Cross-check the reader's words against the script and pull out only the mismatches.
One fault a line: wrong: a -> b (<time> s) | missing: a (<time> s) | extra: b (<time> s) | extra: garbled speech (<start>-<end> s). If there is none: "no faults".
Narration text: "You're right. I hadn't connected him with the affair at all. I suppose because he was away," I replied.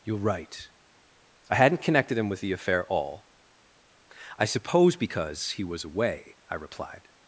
missing: at (2.8 s)